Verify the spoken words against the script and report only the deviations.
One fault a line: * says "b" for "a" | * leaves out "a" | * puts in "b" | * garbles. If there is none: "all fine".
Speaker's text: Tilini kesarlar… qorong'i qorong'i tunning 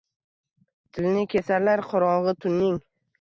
* leaves out "qorong'i"